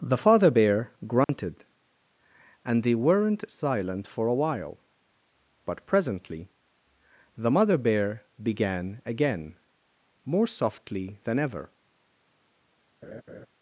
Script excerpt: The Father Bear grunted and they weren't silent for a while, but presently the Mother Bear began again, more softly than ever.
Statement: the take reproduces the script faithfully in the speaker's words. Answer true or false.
true